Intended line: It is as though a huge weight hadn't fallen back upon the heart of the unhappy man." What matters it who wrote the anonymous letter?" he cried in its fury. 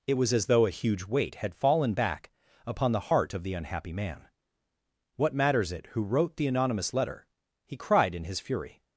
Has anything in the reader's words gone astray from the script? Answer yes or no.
yes